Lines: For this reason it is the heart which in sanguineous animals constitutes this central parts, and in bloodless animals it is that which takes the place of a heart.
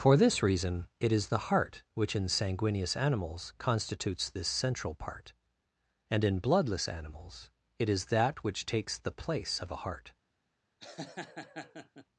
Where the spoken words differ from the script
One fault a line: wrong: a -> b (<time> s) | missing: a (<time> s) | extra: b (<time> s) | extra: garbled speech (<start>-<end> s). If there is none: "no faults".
wrong: parts -> part (4.9 s)